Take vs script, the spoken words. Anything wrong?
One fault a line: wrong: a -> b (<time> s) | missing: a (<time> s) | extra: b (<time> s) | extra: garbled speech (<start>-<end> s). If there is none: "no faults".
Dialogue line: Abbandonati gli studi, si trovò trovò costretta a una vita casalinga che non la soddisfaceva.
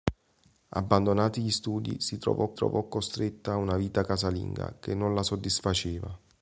no faults